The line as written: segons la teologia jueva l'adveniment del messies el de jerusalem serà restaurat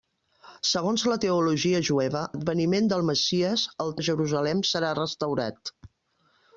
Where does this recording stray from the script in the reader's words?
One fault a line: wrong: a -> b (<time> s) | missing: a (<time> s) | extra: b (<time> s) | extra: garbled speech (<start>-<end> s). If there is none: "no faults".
no faults